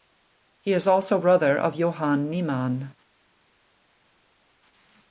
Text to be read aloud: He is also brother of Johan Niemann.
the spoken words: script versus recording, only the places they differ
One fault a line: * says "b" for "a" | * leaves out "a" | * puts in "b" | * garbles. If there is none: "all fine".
all fine